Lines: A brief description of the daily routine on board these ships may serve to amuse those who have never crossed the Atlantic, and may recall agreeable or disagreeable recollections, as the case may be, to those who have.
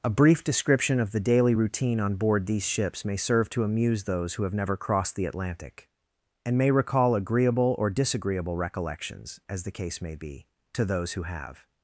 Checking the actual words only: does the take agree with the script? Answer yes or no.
yes